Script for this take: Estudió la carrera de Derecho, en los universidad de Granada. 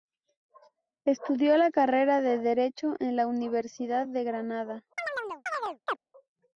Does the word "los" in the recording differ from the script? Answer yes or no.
yes